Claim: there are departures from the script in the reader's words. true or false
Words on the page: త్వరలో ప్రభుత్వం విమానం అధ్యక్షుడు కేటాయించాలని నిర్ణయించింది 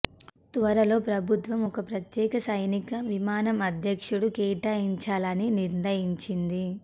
true